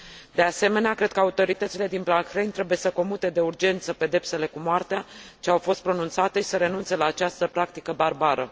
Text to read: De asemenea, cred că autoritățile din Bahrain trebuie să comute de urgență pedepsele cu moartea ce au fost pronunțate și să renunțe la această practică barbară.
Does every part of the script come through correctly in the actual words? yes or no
yes